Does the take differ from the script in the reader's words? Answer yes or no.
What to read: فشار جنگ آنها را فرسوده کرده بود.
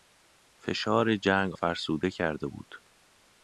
yes